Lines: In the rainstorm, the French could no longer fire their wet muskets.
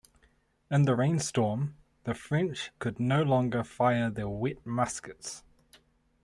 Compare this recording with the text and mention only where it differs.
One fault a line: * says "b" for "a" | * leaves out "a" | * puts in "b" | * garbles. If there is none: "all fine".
all fine